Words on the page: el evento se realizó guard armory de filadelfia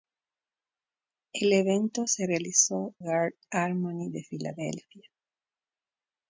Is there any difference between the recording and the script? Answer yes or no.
no